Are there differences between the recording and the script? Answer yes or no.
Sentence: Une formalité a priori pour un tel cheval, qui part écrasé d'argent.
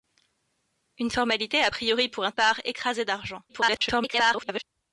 yes